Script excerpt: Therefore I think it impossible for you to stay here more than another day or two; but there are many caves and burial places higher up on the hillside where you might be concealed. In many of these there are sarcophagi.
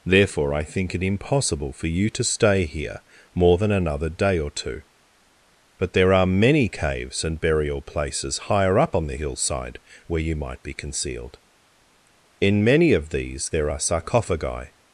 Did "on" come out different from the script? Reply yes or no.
no